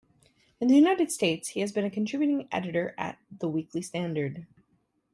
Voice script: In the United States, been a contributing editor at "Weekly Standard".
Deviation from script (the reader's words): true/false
true